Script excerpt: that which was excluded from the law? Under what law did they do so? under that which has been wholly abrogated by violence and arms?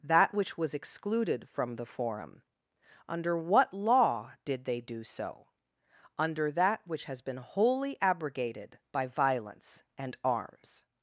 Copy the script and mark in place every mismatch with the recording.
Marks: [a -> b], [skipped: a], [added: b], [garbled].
that which was excluded from the [law? -> forum] Under what law did they do so? under that which has been wholly abrogated by violence and arms?